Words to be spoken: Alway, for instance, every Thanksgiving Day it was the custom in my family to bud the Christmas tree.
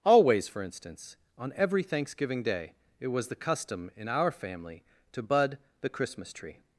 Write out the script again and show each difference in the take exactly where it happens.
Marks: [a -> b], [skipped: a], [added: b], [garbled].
[Alway, -> Always] for instance, [added: on] every Thanksgiving Day it was the custom in [my -> our] family to bud the Christmas tree.